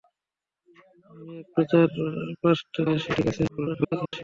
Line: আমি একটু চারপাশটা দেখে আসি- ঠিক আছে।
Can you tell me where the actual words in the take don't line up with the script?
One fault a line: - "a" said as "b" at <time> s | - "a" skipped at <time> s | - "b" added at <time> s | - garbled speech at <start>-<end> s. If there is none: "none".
- "দেখে" skipped at 2.8 s
- garbled speech at 3.5-4.2 s